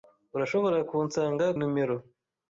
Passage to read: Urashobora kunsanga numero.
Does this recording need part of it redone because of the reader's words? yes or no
no